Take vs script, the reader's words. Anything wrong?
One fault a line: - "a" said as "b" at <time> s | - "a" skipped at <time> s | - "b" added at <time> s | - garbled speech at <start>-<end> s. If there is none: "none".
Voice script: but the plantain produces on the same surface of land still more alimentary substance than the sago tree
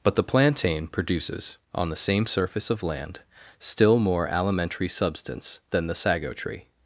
none